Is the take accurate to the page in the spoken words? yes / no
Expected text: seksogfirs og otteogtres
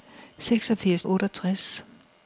yes